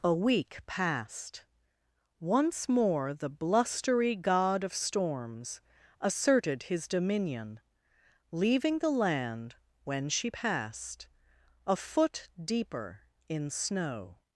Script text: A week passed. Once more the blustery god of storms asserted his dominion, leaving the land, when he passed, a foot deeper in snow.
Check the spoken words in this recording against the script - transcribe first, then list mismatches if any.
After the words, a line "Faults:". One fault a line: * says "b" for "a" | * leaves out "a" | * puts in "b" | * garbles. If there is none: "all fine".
A week passed. Once more the blustery god of storms asserted his dominion, leaving the land, when she passed, a foot deeper in snow.
Faults:
* says "she" for "he"